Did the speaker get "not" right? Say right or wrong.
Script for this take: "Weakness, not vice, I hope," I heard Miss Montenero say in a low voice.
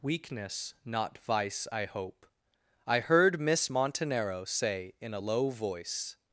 right